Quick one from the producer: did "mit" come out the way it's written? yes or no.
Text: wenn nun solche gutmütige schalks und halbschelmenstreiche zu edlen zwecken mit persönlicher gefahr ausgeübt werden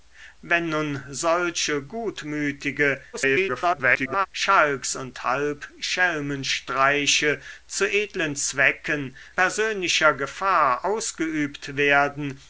no